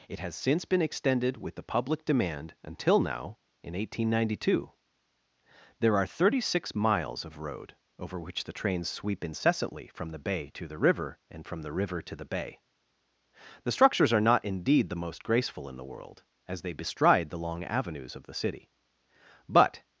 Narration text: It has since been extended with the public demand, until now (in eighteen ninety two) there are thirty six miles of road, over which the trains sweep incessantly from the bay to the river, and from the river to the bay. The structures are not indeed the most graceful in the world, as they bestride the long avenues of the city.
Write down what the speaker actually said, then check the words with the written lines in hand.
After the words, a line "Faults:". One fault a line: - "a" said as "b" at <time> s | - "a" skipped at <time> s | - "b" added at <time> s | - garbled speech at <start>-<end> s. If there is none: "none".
It has since been extended with the public demand, until now (in eighteen ninety two) there are thirty six miles of road, over which the trains sweep incessantly from the bay to the river, and from the river to the bay. The structures are not indeed the most graceful in the world, as they bestride the long avenues of the city. But
Faults:
- "But" added at 19.5 s